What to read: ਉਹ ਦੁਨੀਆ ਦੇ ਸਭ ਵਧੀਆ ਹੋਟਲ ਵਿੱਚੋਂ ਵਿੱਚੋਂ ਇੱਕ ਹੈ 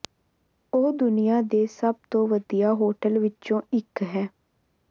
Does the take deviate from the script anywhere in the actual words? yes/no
yes